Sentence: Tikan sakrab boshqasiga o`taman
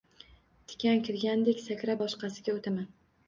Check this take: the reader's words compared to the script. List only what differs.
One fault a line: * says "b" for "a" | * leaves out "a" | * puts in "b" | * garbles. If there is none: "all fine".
* puts in "kirgandek"